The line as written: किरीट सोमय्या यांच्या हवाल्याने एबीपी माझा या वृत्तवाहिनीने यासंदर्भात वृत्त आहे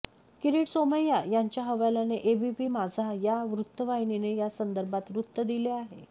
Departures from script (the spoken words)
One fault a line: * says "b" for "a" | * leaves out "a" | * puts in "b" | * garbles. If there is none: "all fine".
* puts in "दिले"